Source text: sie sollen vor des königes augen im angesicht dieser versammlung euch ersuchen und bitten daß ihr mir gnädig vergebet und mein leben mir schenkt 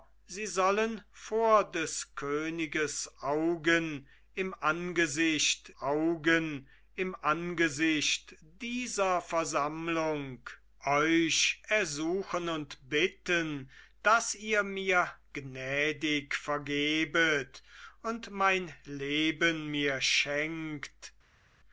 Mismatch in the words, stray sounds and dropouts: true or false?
true